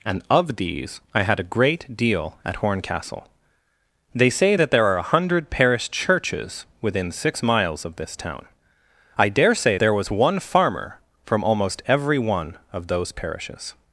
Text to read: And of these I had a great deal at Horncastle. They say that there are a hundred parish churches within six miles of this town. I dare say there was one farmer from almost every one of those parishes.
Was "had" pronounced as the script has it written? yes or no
yes